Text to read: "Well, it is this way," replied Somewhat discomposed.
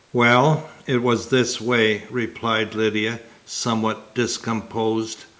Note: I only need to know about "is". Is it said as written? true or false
false